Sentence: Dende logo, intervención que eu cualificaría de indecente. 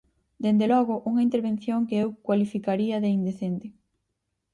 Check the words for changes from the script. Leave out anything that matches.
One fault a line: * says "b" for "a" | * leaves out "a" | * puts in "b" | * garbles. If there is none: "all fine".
* puts in "unha"